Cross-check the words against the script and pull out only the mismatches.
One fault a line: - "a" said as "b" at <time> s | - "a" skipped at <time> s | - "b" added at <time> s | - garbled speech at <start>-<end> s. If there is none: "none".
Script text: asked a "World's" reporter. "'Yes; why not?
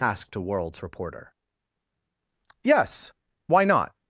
none